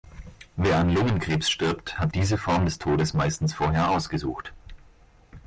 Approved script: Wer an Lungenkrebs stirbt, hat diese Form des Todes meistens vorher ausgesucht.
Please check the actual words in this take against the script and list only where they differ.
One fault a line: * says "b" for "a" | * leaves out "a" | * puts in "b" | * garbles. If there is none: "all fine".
all fine